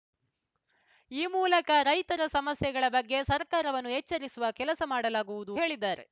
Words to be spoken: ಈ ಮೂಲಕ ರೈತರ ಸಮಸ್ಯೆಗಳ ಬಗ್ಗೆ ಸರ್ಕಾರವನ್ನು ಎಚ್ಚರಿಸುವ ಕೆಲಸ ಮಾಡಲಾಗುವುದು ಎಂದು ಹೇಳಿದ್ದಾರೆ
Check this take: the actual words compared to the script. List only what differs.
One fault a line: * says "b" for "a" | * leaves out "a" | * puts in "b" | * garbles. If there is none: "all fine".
* leaves out "ಎಂದು"